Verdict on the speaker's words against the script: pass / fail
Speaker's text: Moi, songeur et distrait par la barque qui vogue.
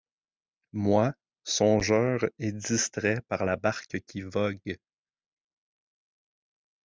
pass